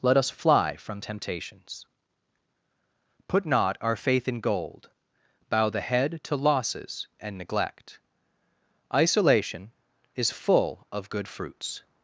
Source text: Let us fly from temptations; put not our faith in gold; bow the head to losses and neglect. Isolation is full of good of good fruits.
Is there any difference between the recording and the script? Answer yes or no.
yes